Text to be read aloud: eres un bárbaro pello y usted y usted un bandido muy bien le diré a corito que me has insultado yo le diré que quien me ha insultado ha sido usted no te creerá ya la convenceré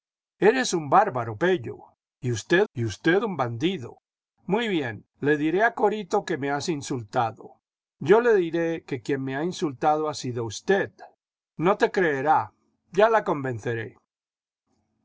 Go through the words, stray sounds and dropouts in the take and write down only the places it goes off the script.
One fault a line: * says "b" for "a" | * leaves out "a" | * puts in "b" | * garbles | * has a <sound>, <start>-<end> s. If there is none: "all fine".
all fine